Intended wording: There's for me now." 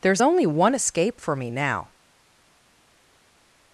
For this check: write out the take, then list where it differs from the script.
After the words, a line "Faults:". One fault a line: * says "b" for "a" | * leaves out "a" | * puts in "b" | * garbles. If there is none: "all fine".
There's only one escape for me now."
Faults:
* puts in "only one escape"